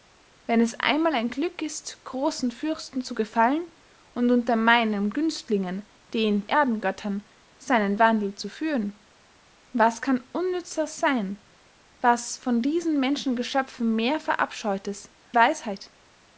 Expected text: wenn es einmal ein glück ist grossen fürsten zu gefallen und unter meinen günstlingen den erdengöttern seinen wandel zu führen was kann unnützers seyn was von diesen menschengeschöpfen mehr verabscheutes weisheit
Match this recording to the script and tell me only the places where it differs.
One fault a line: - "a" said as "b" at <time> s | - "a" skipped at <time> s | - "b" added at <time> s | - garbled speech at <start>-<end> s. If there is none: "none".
none